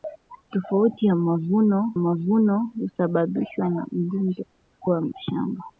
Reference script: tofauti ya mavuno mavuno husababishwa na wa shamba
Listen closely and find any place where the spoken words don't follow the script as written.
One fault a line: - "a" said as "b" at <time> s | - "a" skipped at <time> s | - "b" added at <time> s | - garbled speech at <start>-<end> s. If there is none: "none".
none